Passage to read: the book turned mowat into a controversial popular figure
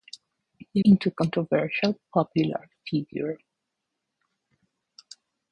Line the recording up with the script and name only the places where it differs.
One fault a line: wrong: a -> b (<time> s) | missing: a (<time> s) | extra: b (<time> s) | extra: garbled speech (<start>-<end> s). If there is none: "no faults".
missing: book turned mowat (0.8 s)